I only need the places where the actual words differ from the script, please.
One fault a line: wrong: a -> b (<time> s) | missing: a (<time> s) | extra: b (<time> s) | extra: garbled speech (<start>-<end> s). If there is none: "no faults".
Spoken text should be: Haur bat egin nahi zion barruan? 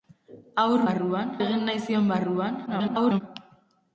wrong: bat -> barruan (0.9 s)
extra: garbled speech (2.7-3.2 s)